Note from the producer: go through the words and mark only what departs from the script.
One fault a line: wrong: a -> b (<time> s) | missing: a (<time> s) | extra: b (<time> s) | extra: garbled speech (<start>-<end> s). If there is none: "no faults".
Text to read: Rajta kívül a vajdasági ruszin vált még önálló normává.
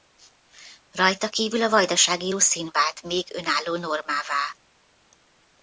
no faults